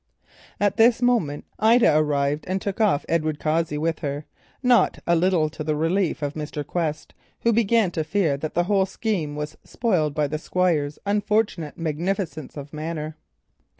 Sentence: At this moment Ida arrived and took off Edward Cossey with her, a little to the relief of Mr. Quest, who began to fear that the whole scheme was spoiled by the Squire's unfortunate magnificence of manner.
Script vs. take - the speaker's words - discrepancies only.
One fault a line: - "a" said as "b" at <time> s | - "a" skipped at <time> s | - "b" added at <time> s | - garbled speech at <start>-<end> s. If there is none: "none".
- "not" added at 4.6 s